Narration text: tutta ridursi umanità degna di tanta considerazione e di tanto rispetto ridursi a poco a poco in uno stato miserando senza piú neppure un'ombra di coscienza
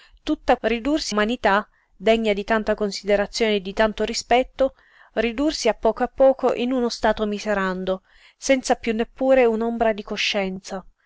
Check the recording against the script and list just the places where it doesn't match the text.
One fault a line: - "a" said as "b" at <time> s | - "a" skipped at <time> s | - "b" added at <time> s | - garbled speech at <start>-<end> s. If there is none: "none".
none